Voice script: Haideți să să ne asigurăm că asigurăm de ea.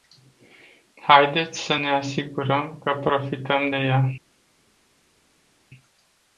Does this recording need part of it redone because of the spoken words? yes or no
yes